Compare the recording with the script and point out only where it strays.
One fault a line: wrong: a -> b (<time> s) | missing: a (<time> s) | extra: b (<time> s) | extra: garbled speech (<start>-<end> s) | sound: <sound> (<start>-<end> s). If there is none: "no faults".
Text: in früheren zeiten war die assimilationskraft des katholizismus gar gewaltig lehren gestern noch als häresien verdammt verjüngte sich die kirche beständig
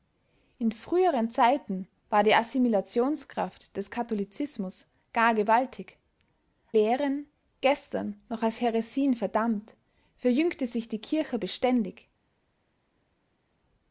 no faults